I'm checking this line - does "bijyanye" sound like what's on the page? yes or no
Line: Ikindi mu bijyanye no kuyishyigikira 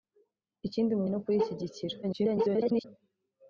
no